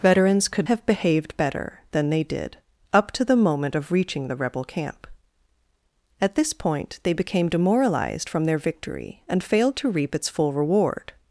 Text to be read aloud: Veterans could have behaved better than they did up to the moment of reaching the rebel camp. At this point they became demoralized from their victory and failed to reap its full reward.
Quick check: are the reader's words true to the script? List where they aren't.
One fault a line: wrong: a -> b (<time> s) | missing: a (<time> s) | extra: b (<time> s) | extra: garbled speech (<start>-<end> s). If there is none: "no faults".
no faults